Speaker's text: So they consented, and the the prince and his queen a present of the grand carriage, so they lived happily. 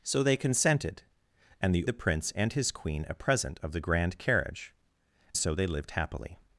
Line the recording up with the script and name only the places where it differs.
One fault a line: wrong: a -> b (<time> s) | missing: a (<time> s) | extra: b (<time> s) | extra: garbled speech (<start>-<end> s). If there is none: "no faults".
no faults